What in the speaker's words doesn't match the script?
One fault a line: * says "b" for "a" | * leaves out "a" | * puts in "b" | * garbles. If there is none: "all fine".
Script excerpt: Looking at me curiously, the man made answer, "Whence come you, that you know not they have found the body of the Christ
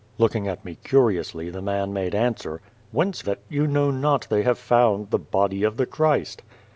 * leaves out "come you"